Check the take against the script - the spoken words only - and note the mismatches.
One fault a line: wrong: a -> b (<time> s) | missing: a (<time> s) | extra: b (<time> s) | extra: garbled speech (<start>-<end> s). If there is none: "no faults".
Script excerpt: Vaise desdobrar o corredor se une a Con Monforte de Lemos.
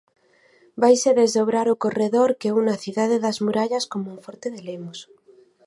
wrong: se -> que (2.4 s)
extra: Cidade das Murallas (2.8 s)